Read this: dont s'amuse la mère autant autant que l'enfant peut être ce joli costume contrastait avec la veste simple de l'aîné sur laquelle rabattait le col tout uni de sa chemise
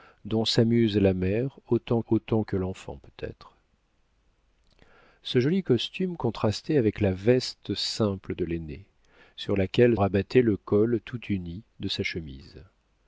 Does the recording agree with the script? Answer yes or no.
yes